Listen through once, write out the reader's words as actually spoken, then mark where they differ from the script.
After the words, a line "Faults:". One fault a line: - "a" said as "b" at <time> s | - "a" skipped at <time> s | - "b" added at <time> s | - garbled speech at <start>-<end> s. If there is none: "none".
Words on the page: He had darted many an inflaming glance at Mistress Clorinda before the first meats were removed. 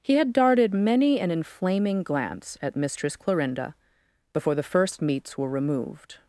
He had darted many an inflaming glance at Mistress Clorinda before the first meats were removed.
Faults:
none